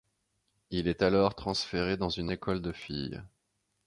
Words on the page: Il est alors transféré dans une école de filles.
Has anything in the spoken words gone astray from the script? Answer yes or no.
no